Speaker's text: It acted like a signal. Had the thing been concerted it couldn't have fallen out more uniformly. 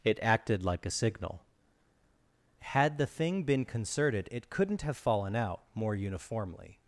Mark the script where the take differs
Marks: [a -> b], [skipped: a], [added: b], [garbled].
It acted like a signal. Had the thing been concerted it couldn't have fallen out more uniformly.